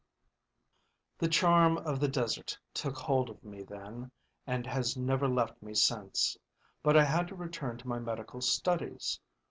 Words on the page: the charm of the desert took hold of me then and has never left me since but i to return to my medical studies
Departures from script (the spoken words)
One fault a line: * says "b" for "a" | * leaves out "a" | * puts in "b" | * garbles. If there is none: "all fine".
* puts in "had"